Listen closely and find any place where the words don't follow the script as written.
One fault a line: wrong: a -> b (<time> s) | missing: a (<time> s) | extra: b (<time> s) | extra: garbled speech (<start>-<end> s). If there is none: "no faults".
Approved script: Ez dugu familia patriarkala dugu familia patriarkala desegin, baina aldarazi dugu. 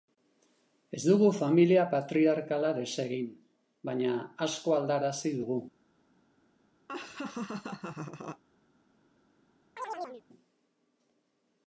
missing: dugu familia patriarkala (2.7 s)
extra: asko (4.5 s)